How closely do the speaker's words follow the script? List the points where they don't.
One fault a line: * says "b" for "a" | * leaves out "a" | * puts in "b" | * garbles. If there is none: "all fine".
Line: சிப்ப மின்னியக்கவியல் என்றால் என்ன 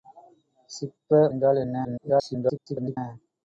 * leaves out "மின்னியக்கவியல்"
* garbles